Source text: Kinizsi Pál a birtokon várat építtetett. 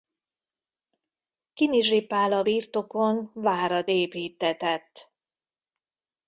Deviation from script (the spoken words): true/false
false